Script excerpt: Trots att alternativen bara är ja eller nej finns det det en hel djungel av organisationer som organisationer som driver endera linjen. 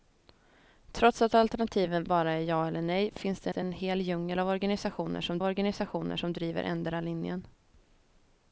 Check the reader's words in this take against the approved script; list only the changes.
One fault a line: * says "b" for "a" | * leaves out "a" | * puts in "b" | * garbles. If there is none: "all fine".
all fine